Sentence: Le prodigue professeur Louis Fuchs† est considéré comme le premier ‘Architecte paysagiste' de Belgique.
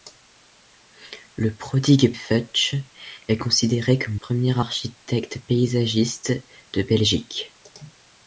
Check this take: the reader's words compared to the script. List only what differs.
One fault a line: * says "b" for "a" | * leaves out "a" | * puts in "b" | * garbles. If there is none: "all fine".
* leaves out "professeur Louis"
* leaves out "le"